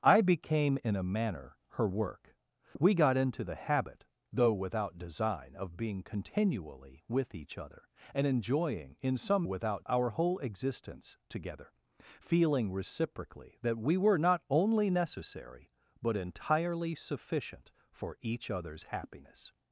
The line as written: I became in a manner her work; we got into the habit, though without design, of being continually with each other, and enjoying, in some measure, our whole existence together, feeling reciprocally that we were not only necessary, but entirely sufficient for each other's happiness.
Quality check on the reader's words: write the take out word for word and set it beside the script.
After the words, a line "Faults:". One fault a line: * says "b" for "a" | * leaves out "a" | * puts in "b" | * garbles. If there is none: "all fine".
I became in a manner her work; we got into the habit, though without design, of being continually with each other, and enjoying, in some without, our whole existence together, feeling reciprocally that we were not only necessary, but entirely sufficient for each other's happiness.
Faults:
* says "without" for "measure"